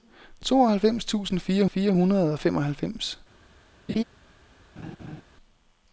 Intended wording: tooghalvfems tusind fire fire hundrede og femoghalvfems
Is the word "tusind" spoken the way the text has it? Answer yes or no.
yes